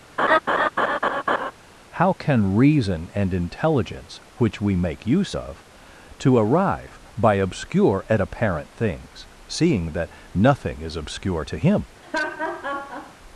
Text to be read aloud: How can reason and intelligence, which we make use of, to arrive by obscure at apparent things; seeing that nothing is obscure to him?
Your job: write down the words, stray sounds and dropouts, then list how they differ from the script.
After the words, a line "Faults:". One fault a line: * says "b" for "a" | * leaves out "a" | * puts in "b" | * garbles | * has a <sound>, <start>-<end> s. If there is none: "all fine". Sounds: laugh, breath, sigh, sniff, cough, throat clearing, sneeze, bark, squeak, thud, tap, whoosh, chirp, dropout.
How can reason and intelligence, which we make use of, to arrive by obscure at apparent things; seeing that nothing is obscure to him?
Faults:
* has a laugh, 0.2-1.5 s
* has a laugh, 12.0-13.2 s